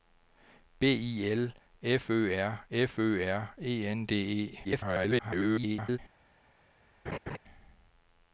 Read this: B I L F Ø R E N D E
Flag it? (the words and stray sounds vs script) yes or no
yes